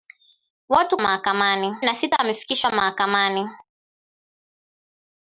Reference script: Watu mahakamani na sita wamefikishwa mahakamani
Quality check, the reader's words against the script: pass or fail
pass